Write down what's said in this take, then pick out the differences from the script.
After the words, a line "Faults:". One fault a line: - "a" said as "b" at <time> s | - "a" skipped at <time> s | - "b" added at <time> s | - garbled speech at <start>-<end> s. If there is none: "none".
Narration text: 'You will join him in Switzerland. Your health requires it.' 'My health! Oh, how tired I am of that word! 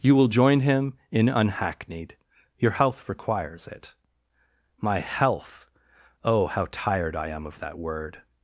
'You will join him in Unhackneyed. Your health requires it.' 'My health! Oh, how tired I am of that word!
Faults:
- "Switzerland" said as "Unhackneyed" at 1.3 s